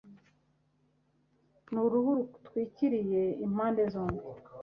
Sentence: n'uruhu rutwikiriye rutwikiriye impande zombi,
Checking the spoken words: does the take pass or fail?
fail